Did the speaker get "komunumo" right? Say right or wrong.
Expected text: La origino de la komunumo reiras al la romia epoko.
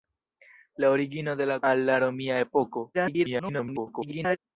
wrong